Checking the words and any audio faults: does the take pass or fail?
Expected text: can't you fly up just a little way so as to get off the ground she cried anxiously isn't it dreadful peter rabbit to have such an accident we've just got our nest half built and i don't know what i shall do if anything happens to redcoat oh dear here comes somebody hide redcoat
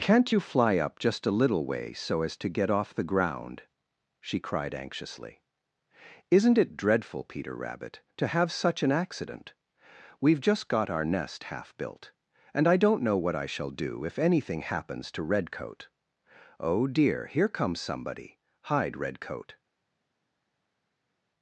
pass